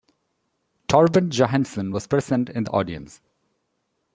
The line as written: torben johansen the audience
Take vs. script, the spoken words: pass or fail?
fail